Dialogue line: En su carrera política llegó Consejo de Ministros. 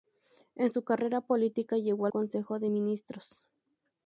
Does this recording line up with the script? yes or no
yes